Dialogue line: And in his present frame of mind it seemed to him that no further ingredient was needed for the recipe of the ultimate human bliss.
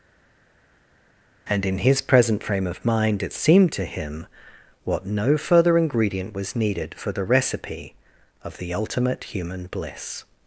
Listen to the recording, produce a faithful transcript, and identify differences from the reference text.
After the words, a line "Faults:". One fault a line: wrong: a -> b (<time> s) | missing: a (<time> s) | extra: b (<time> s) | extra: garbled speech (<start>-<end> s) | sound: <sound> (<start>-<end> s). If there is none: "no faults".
And in his present frame of mind it seemed to him what no further ingredient was needed for the recipe of the ultimate human bliss.
Faults:
wrong: that -> what (4.8 s)